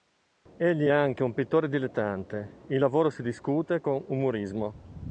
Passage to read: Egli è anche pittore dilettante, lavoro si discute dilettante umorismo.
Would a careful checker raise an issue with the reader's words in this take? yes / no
yes